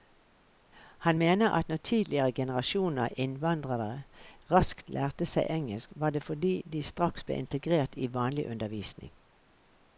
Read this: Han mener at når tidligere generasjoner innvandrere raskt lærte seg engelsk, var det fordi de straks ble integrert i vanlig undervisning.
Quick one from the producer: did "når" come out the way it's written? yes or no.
yes